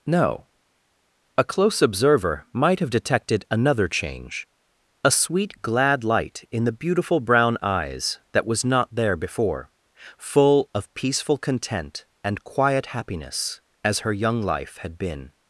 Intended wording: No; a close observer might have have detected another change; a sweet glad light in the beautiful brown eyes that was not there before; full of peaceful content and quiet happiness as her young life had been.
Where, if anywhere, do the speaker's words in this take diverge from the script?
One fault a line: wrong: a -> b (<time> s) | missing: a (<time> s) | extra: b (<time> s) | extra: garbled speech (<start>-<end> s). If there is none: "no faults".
missing: have (2.9 s)